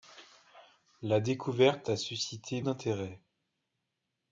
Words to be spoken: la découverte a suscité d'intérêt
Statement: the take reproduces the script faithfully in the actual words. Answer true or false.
true